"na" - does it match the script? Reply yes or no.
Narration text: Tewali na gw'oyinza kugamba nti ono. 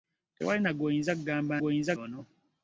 yes